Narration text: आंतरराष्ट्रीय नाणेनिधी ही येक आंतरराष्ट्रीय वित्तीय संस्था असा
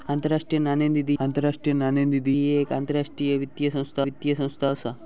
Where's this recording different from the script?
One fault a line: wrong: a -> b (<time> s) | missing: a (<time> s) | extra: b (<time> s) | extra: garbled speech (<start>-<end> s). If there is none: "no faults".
extra: आंतरराष्ट्रीय नाणेनिधी (1.2 s)
extra: वित्तीय संस्था (4.0 s)